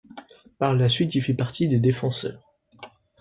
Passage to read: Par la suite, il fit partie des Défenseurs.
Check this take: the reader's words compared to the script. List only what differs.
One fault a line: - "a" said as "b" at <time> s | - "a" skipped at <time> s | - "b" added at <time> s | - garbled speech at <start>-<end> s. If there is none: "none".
none